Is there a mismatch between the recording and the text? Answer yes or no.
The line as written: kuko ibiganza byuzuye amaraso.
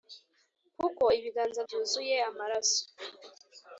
no